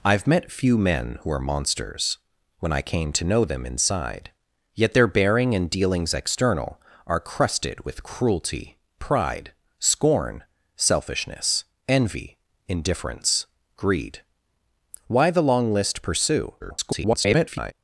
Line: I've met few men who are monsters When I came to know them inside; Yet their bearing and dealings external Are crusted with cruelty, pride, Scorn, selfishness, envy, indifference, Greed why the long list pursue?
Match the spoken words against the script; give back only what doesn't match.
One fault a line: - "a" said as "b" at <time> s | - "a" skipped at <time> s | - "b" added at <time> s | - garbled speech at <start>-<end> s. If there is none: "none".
- garbled speech at 16.6-17.7 s